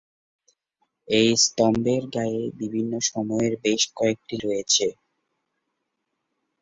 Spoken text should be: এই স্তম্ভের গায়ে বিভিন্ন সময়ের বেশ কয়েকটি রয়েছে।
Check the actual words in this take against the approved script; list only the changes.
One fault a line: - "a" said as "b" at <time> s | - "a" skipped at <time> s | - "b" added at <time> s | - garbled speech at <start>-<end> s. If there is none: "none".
none